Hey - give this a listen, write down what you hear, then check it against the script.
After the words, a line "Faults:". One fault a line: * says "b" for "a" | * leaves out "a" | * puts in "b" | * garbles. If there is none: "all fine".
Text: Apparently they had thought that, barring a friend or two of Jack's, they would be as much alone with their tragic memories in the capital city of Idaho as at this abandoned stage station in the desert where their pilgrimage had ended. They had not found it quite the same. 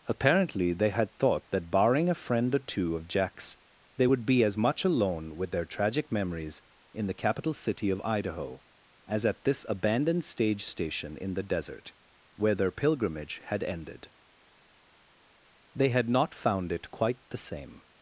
Apparently they had thought that, barring a friend or two of Jack's, they would be as much alone with their tragic memories in the capital city of Idaho as at this abandoned stage station in the desert where their pilgrimage had ended. They had not found it quite the same.
Faults:
all fine